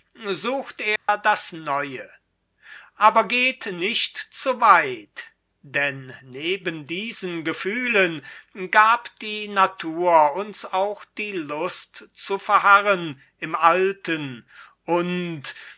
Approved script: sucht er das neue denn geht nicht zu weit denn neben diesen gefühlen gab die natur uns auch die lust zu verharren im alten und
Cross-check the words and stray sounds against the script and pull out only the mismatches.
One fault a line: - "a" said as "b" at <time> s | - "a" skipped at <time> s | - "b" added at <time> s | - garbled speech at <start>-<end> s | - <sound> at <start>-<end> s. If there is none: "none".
- dropout at 1.0-1.1 s
- "denn" said as "aber" at 3.0 s